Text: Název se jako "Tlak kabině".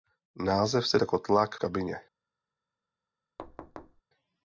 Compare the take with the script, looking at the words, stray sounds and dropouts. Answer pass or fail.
fail